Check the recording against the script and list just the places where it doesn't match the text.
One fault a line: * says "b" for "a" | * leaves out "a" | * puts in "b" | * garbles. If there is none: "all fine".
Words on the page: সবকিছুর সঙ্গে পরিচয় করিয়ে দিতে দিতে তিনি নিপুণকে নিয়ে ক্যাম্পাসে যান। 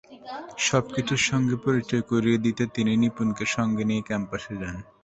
* leaves out "দিতে"
* puts in "সঙ্গে"